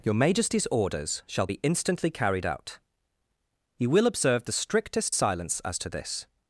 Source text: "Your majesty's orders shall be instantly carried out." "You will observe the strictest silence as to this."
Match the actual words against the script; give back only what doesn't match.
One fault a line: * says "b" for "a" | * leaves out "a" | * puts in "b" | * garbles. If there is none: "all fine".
all fine